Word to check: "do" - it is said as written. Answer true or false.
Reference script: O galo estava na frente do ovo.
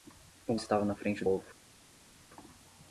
false